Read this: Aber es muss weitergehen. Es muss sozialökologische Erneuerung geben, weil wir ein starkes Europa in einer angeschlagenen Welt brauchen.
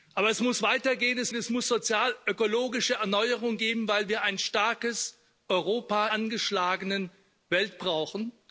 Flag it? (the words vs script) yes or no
yes